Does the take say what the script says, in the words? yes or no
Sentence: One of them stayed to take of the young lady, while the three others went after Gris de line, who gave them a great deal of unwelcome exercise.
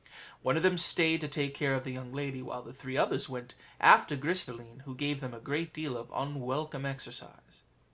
no